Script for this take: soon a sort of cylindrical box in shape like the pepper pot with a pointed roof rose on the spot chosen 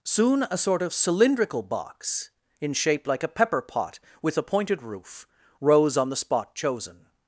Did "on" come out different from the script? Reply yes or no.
no